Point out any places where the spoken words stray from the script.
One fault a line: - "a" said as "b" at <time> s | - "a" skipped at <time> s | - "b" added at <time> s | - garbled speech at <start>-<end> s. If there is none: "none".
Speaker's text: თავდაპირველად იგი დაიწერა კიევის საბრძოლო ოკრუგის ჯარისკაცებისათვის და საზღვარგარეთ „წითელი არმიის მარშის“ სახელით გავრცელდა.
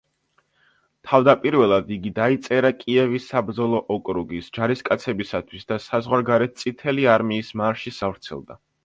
- "სახელით" skipped at 8.1 s